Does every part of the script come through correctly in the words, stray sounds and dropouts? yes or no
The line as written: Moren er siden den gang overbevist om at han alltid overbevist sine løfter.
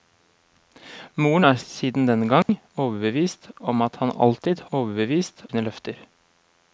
no